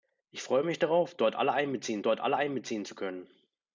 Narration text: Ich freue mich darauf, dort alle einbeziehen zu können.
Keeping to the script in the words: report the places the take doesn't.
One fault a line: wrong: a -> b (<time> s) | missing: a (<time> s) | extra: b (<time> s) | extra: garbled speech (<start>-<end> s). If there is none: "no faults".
extra: dort alle einbeziehen (2.0 s)